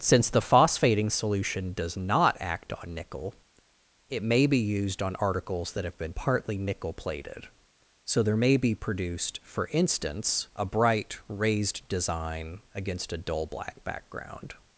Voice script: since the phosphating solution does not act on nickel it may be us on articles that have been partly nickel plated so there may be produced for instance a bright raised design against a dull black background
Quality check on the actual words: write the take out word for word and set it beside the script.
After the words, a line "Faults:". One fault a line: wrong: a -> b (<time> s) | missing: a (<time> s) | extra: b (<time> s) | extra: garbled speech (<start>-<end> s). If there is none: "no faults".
since the phosphating solution does not act on nickel it may be used on articles that have been partly nickel plated so there may be produced for instance a bright raised design against a dull black background
Faults:
wrong: us -> used (4.6 s)